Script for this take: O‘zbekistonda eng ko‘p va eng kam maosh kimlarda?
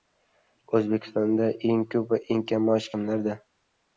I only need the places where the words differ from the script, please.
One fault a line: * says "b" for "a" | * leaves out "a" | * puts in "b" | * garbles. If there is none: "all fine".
all fine